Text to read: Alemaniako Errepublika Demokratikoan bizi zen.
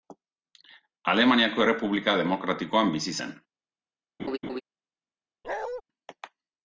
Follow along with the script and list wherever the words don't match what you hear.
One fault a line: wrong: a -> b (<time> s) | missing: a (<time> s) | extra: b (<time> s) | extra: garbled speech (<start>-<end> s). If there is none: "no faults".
no faults